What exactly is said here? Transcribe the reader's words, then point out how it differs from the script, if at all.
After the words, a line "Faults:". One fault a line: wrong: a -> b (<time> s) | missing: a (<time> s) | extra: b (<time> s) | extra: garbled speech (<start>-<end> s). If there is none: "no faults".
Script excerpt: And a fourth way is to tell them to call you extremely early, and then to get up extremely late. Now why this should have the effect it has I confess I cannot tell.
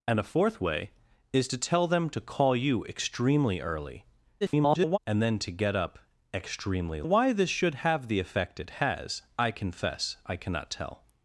And a fourth way is to tell them to call you extremely early, [garbled] and then to get up extremely why this should have the effect it has I confess I cannot tell.
Faults:
extra: garbled speech (4.4-5.0 s)
missing: late Now (7.0 s)